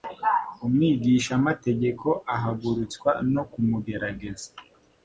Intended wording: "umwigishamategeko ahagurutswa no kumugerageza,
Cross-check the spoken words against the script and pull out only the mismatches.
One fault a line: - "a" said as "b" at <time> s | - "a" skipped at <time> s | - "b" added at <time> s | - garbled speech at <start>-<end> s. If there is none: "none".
none